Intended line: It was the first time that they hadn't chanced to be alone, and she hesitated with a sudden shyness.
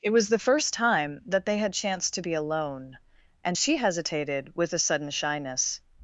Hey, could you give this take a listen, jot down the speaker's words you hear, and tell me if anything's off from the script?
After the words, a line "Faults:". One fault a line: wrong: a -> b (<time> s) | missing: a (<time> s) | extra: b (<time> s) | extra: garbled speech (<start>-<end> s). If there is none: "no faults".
It was the first time that they had chanced to be alone, and she hesitated with a sudden shyness.
Faults:
wrong: hadn't -> had (1.6 s)